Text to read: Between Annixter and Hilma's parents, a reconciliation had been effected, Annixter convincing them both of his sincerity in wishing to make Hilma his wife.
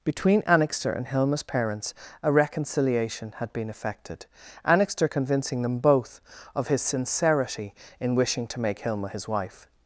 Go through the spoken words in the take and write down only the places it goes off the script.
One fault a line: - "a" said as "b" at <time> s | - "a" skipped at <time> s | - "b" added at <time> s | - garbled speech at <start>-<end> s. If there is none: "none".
none